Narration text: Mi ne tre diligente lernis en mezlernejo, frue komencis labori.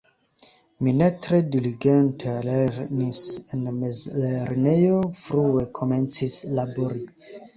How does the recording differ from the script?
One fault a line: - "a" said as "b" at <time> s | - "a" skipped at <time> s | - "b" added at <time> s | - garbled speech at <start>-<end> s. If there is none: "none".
none